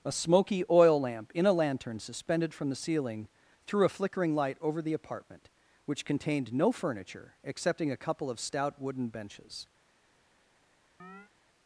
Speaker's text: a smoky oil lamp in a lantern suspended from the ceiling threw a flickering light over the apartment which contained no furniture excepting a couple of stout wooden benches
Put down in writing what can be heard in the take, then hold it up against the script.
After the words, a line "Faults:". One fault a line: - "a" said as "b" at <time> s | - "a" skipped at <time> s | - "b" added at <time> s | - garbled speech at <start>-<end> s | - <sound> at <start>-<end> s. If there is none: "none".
a smoky oil lamp in a lantern suspended from the ceiling threw a flickering light over the apartment which contained no furniture excepting a couple of stout wooden benches
Faults:
- chirp at 11.0-11.3 s